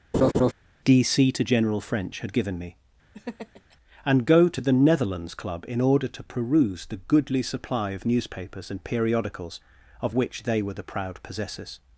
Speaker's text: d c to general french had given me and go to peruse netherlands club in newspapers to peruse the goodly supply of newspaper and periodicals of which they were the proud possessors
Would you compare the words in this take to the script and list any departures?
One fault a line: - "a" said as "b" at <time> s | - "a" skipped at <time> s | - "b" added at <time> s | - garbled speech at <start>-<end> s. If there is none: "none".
- "peruse" said as "the" at 4.6 s
- "newspapers" said as "order" at 5.8 s
- "newspaper" said as "newspapers" at 8.1 s